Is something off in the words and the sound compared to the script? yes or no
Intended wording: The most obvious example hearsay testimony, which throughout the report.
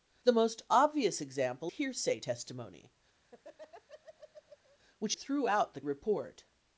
yes